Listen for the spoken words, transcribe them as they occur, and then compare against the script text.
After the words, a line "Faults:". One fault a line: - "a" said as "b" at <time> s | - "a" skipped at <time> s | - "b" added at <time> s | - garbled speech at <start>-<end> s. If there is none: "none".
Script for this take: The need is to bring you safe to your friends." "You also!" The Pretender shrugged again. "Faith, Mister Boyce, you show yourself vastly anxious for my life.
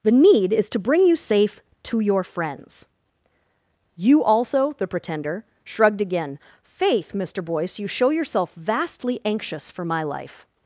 The need is to bring you safe to your friends." "You also!" The Pretender shrugged again. "Faith, Mister Boyce, you show yourself vastly anxious for my life.
Faults:
none